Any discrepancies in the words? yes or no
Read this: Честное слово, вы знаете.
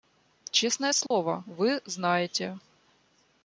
no